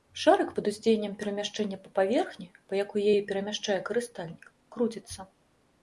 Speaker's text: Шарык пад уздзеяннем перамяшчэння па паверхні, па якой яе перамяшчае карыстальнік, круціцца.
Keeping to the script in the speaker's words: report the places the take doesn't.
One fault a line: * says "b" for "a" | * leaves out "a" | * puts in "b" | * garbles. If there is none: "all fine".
all fine